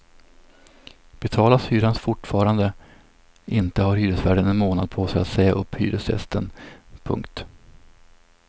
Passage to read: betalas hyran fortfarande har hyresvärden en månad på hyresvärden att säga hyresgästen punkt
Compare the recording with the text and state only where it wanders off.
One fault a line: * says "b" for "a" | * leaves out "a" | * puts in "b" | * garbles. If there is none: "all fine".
* puts in "inte"
* says "sig" for "hyresvärden"
* puts in "upp"